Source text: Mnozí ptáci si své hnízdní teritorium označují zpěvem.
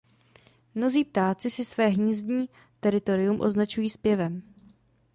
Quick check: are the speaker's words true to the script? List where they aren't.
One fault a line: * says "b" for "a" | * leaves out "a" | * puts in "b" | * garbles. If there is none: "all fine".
all fine